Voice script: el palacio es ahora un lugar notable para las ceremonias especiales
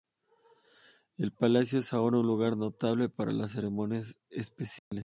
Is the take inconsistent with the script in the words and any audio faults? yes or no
yes